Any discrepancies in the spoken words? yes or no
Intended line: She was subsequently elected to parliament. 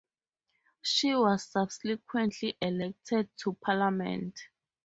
no